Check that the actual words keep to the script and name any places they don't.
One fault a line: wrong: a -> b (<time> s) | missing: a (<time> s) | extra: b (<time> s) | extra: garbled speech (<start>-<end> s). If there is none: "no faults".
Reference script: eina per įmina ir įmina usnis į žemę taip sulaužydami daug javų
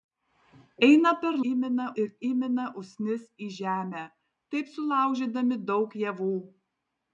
no faults